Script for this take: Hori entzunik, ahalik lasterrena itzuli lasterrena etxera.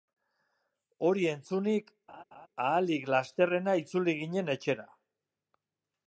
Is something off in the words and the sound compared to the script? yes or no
yes